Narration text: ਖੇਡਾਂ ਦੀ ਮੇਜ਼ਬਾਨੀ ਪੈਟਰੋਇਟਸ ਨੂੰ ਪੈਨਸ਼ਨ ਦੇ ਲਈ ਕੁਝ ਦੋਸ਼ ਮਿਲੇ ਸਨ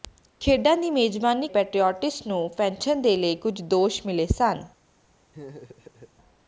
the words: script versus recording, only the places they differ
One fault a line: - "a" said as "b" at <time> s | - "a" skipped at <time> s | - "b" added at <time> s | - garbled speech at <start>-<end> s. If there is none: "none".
none